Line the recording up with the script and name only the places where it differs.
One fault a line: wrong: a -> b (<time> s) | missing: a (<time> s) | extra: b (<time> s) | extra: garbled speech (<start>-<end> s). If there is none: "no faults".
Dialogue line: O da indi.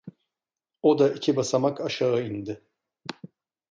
extra: iki basamak aşağı (1.1 s)